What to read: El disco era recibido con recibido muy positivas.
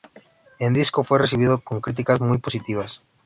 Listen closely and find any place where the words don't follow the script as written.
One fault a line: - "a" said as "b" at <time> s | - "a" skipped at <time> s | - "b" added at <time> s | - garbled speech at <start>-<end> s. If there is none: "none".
- "era" said as "fue" at 1.0 s
- "recibido" said as "críticas" at 1.8 s